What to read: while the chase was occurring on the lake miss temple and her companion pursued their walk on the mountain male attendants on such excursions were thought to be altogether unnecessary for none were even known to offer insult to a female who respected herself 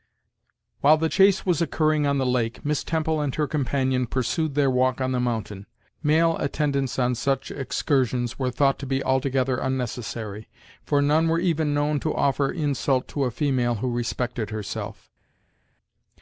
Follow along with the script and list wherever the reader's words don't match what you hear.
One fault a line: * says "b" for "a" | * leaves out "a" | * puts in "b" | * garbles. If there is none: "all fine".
all fine